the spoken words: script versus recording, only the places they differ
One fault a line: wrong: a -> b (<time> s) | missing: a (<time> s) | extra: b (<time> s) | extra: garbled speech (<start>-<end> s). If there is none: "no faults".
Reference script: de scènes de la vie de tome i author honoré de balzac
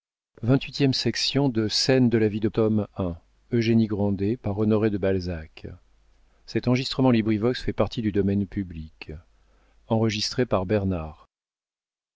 no faults